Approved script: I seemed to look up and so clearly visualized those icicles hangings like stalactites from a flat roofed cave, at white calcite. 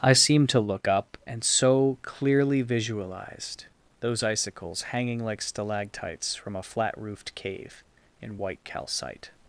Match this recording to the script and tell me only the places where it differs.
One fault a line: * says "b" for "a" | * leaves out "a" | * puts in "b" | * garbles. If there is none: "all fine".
* says "hanging" for "hangings"
* says "in" for "at"